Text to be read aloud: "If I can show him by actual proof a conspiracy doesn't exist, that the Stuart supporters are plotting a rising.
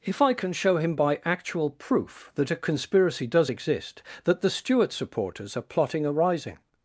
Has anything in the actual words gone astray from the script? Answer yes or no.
yes